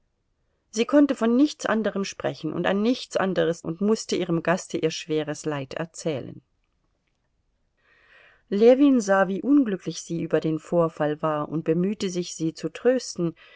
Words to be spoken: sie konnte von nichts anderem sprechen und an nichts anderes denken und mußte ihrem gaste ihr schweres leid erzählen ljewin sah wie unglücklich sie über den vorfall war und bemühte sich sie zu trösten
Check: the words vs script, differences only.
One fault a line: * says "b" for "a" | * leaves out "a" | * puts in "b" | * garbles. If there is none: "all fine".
* leaves out "denken"